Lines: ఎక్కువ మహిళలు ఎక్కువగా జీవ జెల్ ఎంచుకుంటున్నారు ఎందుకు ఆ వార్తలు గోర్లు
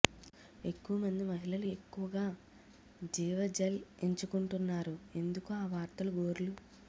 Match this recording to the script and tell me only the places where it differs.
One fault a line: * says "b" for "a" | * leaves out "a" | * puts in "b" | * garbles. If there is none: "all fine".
* puts in "మంది"